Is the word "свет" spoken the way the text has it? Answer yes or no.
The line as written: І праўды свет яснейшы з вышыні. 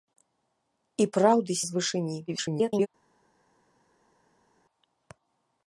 no